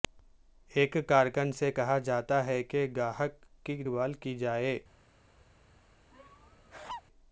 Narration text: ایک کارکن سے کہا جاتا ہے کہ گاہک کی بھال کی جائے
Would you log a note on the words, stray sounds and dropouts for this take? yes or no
yes